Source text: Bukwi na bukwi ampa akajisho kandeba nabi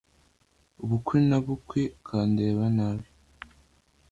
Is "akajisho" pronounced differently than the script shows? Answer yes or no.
yes